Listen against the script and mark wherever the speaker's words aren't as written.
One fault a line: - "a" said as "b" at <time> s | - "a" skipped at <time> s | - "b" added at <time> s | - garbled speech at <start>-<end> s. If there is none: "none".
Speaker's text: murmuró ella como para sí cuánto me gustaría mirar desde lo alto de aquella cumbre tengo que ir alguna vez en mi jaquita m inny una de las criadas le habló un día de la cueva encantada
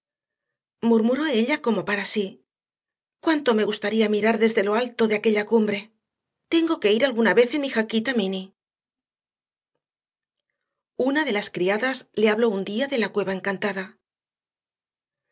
none